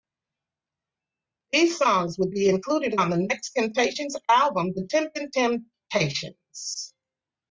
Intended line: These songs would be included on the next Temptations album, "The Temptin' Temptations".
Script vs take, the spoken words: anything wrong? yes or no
no